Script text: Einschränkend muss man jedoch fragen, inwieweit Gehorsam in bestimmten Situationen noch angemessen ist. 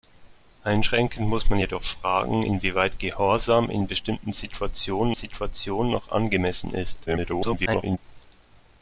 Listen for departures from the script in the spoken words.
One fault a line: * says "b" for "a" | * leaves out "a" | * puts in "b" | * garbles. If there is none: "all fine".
* puts in "Situationen"
* garbles